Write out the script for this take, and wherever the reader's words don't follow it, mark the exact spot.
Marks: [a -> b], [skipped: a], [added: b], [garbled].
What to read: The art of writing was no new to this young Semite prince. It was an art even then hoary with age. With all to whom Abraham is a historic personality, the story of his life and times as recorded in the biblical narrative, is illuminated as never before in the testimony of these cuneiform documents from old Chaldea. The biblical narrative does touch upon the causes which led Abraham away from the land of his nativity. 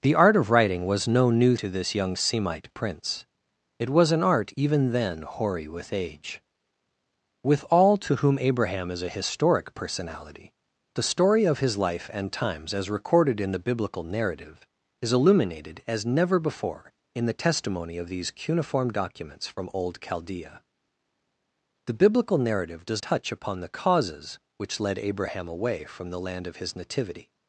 The art of writing was no new to this young Semite prince. It was an art even then hoary with age. With all to whom Abraham is a historic personality, the story of his life and times as recorded in the biblical narrative, is illuminated as never before in the testimony of these cuneiform documents from old Chaldea. The biblical narrative does touch upon the causes which led Abraham away from the land of his nativity.